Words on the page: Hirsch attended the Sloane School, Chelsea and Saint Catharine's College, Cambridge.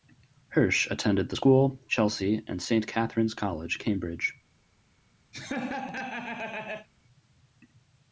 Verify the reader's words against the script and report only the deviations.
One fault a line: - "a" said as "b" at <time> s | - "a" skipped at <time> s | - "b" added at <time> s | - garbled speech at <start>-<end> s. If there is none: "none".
- "Sloane" skipped at 1.4 s